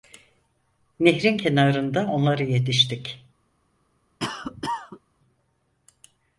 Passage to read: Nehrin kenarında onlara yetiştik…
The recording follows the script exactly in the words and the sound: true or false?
false